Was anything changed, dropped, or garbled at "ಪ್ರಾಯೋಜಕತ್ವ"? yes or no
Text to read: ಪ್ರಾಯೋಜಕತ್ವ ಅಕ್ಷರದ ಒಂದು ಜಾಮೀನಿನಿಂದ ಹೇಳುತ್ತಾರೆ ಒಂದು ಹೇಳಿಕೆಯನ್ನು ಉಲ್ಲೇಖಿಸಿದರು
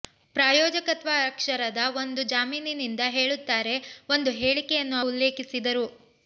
no